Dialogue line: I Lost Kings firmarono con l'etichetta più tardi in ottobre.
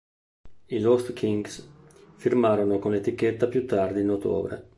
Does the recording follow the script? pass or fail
pass